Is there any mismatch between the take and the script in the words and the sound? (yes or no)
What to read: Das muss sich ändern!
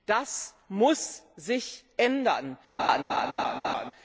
yes